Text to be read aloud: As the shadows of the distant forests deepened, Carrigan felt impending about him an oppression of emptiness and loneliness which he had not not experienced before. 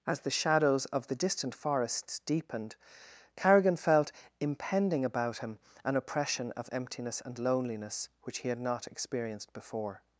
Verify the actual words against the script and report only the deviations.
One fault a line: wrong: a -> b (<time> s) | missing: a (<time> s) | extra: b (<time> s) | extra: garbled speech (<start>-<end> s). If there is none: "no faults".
missing: not (8.9 s)